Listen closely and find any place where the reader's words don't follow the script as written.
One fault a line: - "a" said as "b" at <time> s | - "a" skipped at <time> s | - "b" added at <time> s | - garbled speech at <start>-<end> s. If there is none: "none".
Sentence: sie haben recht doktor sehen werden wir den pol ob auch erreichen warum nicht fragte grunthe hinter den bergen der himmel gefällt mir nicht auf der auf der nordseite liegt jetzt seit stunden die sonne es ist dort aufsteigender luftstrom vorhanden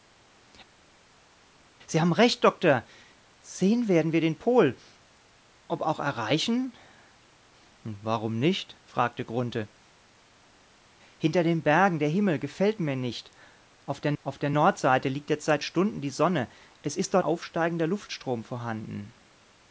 none